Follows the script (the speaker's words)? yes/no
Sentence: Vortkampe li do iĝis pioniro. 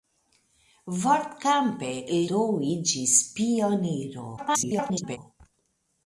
no